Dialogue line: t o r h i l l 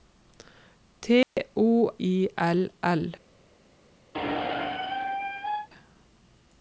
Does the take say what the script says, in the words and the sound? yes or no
no